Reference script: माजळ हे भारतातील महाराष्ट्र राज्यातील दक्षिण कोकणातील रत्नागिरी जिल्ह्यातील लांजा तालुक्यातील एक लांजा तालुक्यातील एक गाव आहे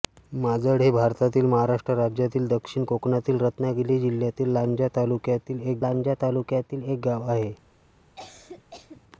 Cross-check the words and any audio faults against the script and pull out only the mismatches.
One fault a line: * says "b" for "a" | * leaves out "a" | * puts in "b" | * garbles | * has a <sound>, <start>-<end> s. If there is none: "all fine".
* has a cough, 8.2-9.0 s